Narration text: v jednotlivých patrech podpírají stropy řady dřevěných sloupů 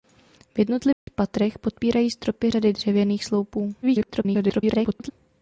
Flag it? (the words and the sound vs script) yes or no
yes